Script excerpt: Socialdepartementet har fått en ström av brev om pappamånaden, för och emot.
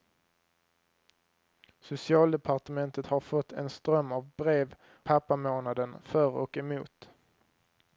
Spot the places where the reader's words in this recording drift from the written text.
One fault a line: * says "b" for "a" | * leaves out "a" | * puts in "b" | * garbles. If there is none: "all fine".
* leaves out "om"